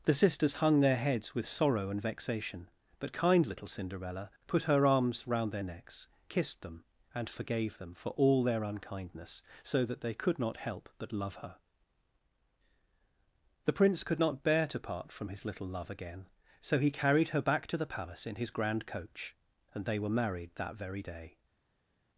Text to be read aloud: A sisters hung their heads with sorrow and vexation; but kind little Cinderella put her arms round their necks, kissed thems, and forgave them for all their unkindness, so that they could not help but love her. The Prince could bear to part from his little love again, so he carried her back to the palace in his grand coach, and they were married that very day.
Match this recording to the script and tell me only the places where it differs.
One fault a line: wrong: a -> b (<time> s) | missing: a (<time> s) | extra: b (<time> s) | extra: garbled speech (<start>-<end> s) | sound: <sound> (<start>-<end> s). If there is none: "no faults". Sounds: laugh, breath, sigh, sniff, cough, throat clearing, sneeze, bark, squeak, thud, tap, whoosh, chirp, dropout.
wrong: A -> The (0.0 s)
wrong: thems -> them (6.6 s)
extra: not (14.2 s)